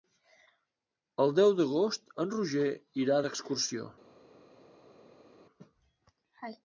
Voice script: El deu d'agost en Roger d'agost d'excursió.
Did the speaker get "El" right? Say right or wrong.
right